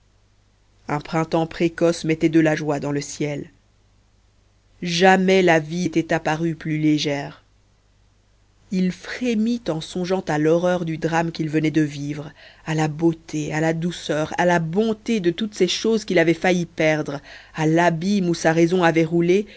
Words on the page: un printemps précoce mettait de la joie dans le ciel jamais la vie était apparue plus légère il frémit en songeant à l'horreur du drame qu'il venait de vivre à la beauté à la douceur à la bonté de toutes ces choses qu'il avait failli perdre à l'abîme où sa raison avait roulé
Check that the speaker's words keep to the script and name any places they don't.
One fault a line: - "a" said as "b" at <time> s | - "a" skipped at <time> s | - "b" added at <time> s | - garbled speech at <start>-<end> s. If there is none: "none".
none